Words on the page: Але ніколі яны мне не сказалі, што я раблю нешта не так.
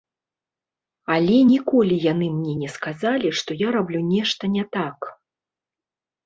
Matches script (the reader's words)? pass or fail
pass